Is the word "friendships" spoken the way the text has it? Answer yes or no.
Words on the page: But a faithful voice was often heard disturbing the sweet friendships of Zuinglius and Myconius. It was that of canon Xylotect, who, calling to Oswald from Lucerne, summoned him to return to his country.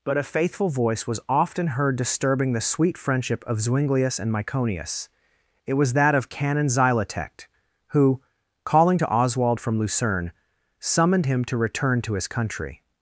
no